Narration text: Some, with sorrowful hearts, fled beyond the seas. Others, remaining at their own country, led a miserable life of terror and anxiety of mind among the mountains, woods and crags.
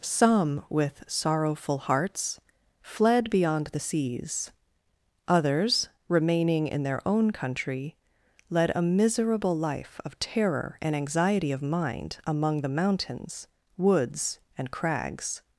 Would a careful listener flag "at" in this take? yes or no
yes